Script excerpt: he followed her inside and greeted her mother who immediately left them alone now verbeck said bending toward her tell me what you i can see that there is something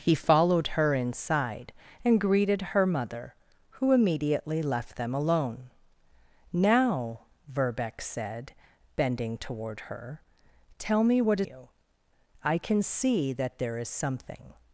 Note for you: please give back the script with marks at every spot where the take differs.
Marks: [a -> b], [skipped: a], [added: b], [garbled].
he followed her inside and greeted her mother who immediately left them alone now verbeck said bending toward her tell me what you i can see that there is something